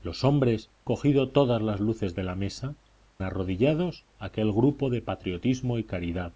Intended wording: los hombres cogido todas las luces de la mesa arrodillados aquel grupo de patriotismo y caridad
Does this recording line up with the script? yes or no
yes